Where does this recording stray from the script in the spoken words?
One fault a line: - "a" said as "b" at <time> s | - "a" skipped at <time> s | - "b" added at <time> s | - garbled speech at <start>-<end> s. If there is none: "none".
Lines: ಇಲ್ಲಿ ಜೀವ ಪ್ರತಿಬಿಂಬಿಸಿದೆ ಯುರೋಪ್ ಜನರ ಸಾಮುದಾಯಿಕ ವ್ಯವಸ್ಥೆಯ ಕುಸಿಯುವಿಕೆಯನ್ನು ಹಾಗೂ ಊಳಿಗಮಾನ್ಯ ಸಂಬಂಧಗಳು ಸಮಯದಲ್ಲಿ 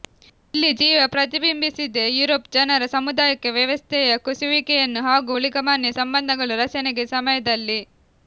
- "ರಚನೆಗೆ" added at 6.6 s